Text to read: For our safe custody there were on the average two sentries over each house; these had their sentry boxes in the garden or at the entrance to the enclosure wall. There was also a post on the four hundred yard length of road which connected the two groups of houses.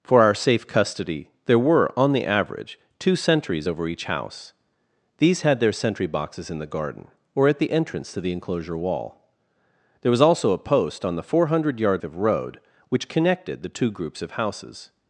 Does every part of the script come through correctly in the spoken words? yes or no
no